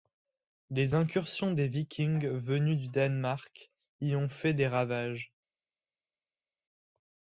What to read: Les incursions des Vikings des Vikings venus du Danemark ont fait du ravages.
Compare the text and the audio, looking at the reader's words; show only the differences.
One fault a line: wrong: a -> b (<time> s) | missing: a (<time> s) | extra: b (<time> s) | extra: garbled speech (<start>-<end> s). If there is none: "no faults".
missing: des Vikings (2.3 s)
extra: y (4.0 s)
wrong: du -> des (4.5 s)